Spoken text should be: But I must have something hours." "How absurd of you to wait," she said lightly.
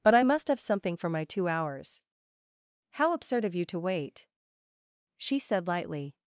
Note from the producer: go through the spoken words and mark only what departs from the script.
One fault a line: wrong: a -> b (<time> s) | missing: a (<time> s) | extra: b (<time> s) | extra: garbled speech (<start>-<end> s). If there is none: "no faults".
extra: for my two (1.0 s)